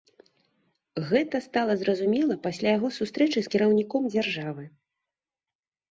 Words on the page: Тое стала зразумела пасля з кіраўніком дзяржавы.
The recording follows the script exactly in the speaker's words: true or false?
false